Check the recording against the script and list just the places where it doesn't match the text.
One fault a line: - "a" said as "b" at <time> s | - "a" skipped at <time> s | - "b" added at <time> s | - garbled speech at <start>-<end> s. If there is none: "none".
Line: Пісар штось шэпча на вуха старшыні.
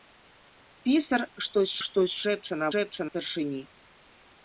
- "штось" added at 1.9 s
- "вуха" said as "шэпча" at 2.7 s